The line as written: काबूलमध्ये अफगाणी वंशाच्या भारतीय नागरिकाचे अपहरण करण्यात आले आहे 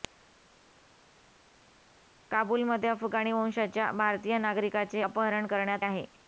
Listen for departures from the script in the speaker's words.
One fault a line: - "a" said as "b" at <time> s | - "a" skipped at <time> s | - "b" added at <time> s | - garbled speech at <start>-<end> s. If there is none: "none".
- "आले" skipped at 5.9 s